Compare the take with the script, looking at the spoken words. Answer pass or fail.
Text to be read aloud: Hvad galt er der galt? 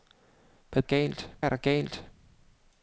pass